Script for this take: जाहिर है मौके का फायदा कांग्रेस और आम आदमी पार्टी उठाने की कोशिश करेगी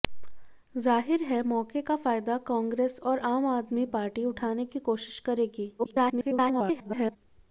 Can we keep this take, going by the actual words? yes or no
no